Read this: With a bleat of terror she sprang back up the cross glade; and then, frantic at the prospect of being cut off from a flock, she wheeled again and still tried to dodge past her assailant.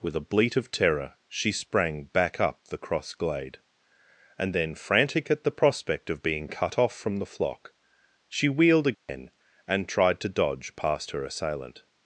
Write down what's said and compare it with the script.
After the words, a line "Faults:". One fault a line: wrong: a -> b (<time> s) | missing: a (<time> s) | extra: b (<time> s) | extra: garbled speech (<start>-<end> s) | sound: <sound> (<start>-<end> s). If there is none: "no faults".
With a bleat of terror she sprang back up the cross glade; and then, frantic at the prospect of being cut off from the flock, she wheeled again and tried to dodge past her assailant.
Faults:
wrong: a -> the (7.2 s)
sound: dropout (8.9-9.1 s)
missing: still (9.9 s)